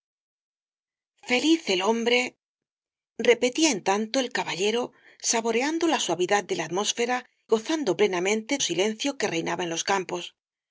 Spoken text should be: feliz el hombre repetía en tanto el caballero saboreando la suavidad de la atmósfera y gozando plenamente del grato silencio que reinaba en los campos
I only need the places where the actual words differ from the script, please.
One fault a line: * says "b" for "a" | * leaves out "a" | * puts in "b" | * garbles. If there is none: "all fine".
* leaves out "y"
* leaves out "del grato"